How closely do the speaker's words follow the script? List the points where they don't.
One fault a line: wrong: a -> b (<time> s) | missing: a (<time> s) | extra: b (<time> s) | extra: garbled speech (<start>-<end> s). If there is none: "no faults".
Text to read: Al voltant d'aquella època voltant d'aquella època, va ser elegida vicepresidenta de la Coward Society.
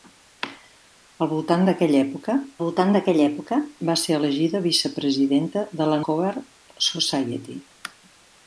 no faults